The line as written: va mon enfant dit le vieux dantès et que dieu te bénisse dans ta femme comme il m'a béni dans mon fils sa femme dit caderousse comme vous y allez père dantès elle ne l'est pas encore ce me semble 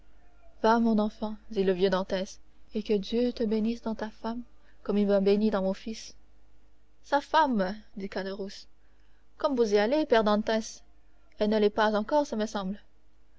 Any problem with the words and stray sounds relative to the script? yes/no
no